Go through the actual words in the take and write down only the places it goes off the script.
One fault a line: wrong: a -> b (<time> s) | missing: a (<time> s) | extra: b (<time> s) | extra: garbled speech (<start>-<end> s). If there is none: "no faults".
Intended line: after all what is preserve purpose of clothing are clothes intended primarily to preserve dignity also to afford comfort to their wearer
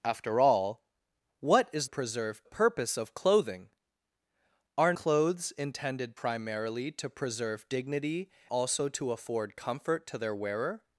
no faults